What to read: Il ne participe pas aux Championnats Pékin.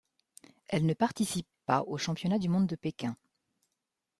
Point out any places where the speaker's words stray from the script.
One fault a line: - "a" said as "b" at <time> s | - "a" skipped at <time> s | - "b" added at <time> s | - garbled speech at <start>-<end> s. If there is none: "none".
- "Il" said as "Elle" at 0.7 s
- "du monde de" added at 2.4 s